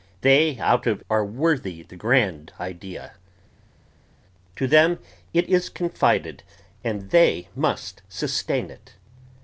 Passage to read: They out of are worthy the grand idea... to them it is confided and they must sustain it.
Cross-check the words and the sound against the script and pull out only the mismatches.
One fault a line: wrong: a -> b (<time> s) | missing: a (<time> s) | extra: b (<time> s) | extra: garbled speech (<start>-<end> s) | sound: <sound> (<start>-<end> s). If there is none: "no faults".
no faults